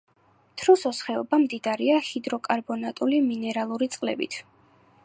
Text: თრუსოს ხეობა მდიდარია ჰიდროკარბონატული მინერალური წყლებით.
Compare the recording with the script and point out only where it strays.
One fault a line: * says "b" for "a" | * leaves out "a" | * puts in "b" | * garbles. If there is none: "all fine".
all fine